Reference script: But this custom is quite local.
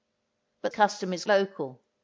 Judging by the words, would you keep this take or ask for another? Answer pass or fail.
fail